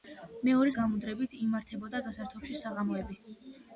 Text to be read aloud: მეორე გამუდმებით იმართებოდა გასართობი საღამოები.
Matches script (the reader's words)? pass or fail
pass